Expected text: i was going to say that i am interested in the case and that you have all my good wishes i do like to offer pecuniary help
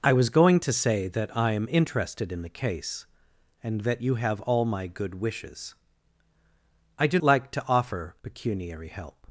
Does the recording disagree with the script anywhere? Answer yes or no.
no